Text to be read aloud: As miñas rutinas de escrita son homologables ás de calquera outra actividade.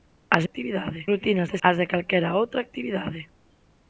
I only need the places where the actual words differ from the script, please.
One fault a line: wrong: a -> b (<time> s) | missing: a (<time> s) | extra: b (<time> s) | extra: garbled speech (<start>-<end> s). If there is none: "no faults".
wrong: miñas -> actividade (0.5 s)
missing: escrita son homologables (1.6 s)